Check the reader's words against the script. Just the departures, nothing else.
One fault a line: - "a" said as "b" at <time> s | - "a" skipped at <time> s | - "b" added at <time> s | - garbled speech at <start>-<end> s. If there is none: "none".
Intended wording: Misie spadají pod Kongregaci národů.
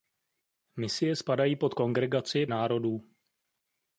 none